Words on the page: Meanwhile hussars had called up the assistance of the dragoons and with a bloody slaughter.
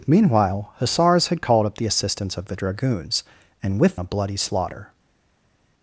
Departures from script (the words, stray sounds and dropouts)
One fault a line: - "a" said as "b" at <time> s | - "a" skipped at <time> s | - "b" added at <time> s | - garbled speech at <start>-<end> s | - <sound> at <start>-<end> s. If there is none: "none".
none